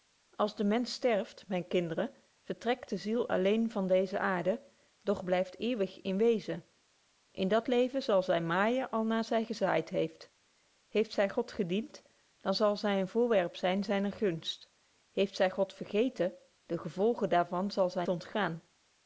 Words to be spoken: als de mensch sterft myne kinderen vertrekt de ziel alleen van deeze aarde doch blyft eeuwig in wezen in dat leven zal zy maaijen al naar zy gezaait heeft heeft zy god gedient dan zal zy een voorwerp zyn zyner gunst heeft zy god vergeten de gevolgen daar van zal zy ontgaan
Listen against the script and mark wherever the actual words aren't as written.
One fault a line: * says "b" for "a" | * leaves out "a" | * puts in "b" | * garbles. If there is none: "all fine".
all fine